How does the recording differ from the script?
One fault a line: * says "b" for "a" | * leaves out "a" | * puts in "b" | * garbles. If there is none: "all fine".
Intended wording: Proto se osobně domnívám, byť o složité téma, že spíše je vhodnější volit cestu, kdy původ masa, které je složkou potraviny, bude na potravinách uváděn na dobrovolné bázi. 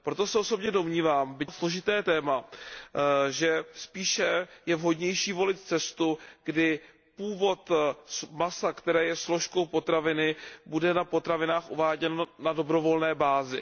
all fine